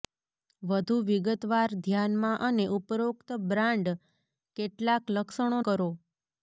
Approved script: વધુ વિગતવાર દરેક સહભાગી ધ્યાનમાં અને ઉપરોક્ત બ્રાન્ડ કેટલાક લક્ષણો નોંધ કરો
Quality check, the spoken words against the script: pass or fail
fail